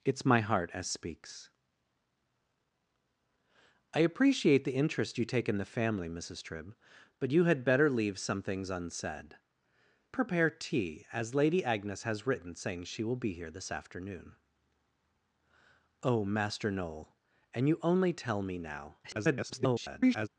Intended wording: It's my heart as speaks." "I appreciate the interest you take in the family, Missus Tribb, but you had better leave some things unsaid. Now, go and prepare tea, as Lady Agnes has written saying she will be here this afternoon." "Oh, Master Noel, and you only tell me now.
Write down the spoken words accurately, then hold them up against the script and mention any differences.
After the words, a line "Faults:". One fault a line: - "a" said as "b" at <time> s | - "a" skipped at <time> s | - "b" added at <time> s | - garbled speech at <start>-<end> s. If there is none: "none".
It's my heart as speaks." "I appreciate the interest you take in the family, Missus Tribb, but you had better leave some things unsaid. Prepare tea, as Lady Agnes has written saying she will be here this afternoon." "Oh, Master Noel, and you only tell me now. [garbled]
Faults:
- "Now go and" skipped at 9.4 s
- garbled speech at 19.0-20.3 s